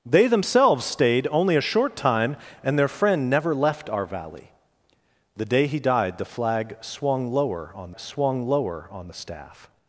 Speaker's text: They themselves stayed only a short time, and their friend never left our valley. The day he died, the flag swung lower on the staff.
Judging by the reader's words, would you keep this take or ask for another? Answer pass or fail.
fail